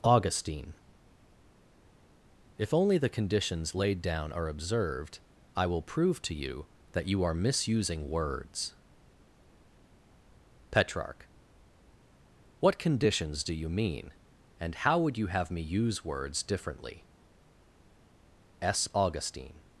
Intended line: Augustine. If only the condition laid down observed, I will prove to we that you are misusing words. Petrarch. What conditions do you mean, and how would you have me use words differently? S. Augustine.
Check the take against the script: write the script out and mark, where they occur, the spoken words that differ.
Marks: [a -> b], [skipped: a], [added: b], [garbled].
Augustine. If only the [condition -> conditions] laid down [added: are] observed, I will prove to [we -> you] that you are misusing words. Petrarch. What conditions do you mean, and how would you have me use words differently? S. Augustine.